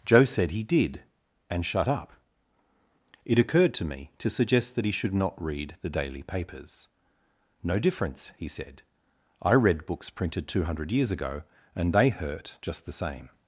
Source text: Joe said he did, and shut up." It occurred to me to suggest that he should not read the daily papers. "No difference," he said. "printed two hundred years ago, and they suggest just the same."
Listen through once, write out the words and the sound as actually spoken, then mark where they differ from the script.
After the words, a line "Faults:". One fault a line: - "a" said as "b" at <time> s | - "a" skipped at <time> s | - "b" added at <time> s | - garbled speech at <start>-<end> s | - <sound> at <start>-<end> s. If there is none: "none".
Joe said he did, and shut up." It occurred to me to suggest that he should not read the daily papers. "No difference," he said. "I read books printed two hundred years ago, and they hurt just the same."
Faults:
- "I read books" added at 9.4 s
- "suggest" said as "hurt" at 12.1 s